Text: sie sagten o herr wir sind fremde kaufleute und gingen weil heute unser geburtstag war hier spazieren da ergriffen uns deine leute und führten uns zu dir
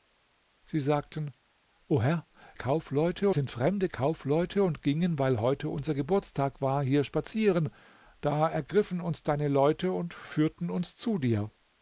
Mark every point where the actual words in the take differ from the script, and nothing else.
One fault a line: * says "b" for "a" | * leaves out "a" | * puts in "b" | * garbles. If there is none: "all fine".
* says "kaufleute" for "wir"